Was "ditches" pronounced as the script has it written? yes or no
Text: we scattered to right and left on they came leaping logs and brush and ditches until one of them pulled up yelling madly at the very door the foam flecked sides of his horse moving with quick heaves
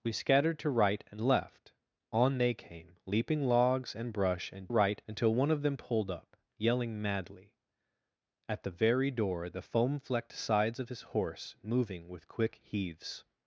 no